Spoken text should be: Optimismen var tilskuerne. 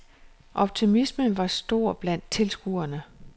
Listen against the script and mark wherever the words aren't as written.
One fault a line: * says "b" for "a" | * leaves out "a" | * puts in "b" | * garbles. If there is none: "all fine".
* puts in "stor blandt"